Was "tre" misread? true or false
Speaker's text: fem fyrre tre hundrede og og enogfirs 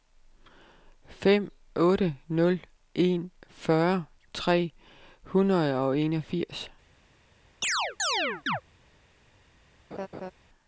false